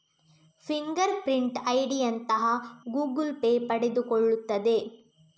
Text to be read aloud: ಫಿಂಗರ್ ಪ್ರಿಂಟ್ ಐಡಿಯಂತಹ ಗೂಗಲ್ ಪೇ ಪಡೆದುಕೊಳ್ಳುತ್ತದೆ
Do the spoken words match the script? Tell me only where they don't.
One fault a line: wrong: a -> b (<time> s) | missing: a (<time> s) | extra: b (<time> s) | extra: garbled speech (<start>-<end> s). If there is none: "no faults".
no faults